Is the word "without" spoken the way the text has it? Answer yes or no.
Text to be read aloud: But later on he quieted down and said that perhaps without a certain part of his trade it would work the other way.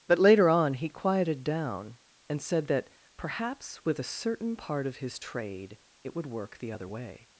no